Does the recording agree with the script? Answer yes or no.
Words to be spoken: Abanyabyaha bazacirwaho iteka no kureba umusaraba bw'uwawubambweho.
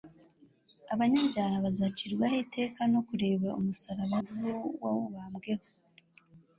yes